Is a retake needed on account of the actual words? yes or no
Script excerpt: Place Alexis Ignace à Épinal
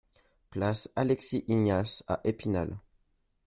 no